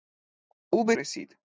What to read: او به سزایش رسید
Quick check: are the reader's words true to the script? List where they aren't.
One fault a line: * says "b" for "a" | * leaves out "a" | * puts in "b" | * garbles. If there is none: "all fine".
* leaves out "سزایش"